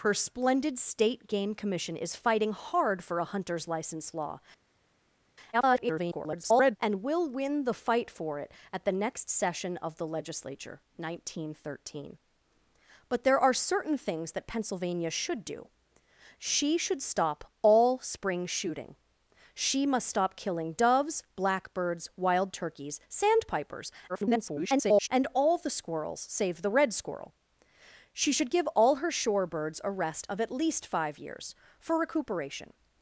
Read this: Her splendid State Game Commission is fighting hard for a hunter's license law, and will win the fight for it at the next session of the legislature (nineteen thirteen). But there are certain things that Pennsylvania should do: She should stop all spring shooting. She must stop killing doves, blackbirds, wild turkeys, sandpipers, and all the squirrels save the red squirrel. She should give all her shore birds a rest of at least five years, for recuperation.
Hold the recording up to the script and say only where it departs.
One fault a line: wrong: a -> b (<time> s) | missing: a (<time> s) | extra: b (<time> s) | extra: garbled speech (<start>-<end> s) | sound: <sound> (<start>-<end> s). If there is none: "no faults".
extra: garbled speech (5.5-6.8 s)
extra: garbled speech (24.1-25.1 s)